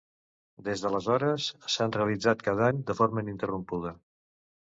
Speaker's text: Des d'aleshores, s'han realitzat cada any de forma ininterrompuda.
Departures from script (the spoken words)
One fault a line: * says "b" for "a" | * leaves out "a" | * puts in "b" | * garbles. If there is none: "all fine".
all fine